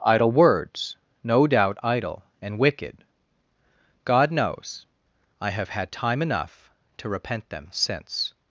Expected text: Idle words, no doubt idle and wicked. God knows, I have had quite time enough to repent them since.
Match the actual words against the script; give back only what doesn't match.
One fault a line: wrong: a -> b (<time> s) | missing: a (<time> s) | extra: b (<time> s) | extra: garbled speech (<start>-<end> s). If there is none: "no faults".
missing: quite (5.9 s)